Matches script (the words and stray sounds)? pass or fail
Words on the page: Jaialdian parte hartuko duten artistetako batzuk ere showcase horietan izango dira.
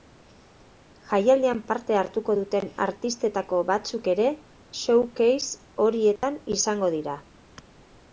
fail